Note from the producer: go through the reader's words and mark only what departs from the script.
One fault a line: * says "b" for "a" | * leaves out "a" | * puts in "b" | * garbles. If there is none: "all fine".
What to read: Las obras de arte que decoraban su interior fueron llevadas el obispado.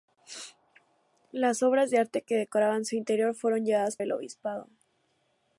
all fine